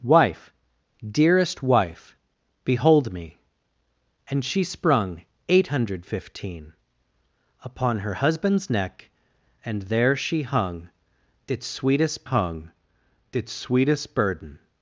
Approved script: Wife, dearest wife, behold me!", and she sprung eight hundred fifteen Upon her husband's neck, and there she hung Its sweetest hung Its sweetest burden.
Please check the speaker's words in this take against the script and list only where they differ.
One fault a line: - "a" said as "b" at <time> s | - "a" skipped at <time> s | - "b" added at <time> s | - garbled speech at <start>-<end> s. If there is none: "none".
none